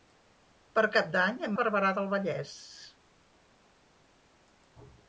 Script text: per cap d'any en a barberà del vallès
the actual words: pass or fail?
pass